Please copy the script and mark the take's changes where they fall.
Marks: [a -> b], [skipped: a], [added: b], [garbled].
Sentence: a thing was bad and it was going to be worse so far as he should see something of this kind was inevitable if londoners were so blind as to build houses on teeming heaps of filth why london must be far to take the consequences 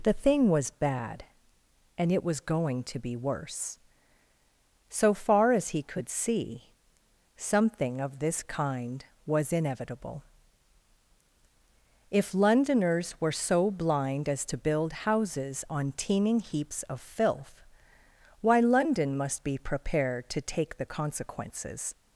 [a -> the] thing was bad and it was going to be worse so far as he [should -> could] see something of this kind was inevitable if londoners were so blind as to build houses on teeming heaps of filth why london must be [far -> prepared] to take the consequences